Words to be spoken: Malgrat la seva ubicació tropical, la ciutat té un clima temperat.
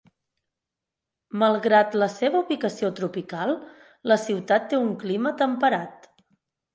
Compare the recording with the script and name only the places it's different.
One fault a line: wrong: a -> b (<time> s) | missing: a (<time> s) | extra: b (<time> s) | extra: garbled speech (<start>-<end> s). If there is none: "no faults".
no faults